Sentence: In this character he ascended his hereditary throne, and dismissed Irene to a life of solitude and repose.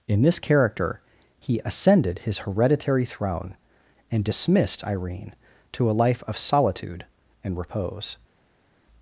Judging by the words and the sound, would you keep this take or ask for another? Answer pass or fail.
pass